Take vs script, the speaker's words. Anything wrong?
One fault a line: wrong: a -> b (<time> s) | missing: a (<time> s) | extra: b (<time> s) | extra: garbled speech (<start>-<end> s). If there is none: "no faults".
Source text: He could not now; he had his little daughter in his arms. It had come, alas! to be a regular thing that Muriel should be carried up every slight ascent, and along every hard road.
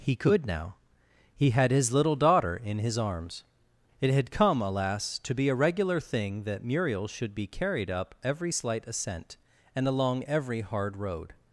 missing: not (0.5 s)